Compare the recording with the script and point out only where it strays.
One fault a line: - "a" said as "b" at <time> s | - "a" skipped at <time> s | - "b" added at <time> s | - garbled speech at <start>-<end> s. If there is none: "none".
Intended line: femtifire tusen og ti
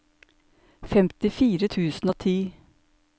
none